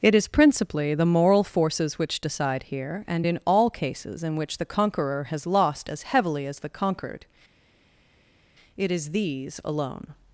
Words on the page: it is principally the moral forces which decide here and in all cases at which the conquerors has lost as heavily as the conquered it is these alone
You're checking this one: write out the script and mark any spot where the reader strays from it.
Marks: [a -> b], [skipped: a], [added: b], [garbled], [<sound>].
it is principally the moral forces which decide here and in all cases [at -> in] which the [conquerors -> conqueror] has lost as heavily as the conquered it is these alone